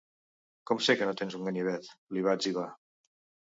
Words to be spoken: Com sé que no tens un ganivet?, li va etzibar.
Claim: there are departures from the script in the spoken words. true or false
false